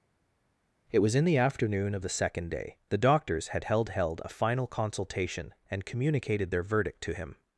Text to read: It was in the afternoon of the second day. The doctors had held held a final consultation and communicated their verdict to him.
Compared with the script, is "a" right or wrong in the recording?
right